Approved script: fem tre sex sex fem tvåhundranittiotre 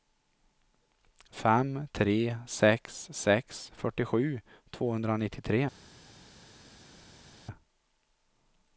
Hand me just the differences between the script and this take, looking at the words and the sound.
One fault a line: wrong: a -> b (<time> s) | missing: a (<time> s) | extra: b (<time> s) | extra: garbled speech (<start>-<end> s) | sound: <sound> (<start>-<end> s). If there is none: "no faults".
wrong: fem -> fyrtiosju (3.8 s)